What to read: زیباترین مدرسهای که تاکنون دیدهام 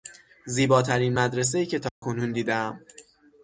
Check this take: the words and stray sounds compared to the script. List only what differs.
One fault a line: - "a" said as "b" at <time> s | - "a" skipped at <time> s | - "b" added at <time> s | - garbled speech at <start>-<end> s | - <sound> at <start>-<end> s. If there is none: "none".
- dropout at 1.9-2.0 s